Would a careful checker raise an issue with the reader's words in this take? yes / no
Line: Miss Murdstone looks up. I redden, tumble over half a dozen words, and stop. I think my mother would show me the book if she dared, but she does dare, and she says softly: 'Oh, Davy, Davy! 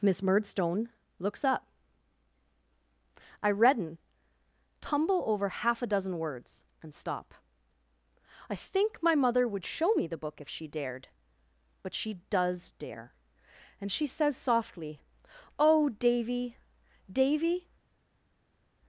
no